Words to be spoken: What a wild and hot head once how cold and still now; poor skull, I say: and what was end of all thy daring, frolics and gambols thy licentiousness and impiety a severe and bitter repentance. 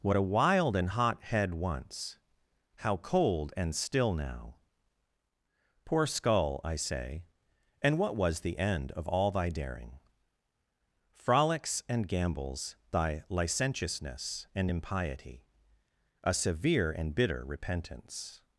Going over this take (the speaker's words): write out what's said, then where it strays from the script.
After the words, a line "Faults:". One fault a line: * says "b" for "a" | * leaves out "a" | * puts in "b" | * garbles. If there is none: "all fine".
What a wild and hot head once how cold and still now; poor skull, I say: and what was the end of all thy daring, frolics and gambols thy licentiousness and impiety a severe and bitter repentance.
Faults:
* puts in "the"